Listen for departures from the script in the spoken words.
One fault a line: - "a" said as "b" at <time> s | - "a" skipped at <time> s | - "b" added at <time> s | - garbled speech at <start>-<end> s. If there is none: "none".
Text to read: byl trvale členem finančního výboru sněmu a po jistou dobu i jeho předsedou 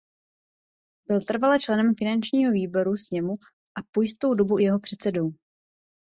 none